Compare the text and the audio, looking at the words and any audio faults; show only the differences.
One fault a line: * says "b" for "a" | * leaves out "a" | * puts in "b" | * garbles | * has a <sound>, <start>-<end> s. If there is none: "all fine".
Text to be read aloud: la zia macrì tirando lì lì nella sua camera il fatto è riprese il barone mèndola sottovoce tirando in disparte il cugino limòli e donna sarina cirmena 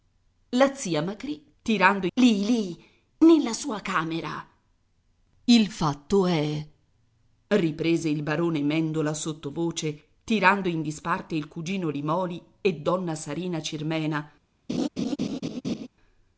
* has a laugh, 14.7-15.9 s